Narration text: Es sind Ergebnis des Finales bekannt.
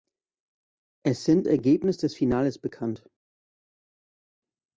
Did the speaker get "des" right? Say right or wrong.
right